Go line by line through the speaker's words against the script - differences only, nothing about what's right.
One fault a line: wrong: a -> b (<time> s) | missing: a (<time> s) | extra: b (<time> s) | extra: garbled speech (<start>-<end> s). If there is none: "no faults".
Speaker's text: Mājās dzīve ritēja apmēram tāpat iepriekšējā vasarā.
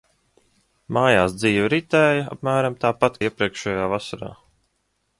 no faults